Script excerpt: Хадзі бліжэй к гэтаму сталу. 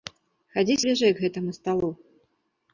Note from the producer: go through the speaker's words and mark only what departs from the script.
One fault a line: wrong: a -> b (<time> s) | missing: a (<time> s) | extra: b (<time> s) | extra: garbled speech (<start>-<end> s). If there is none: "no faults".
no faults